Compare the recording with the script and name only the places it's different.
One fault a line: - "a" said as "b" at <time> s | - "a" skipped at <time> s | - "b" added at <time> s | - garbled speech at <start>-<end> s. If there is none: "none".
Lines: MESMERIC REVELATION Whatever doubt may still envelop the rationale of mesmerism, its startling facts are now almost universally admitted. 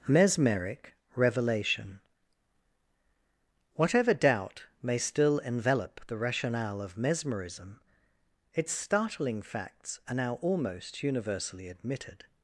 none